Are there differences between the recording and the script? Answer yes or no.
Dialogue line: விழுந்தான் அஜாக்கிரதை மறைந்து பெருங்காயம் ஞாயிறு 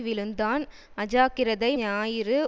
yes